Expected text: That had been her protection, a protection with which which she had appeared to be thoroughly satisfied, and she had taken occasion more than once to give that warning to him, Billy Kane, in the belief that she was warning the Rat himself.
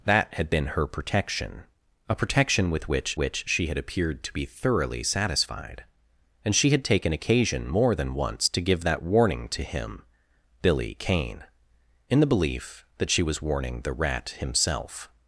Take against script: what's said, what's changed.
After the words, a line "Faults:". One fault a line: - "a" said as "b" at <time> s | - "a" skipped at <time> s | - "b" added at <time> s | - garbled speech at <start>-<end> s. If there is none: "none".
That had been her protection, a protection with which which she had appeared to be thoroughly satisfied, and she had taken occasion more than once to give that warning to him, Billy Kane, in the belief that she was warning the Rat himself.
Faults:
none